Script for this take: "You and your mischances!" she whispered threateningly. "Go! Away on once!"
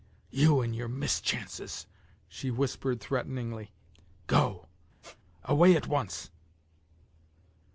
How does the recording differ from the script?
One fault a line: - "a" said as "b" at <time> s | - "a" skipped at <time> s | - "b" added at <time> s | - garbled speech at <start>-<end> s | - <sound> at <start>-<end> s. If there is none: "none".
- squeak at 5.0-5.2 s
- "on" said as "at" at 5.7 s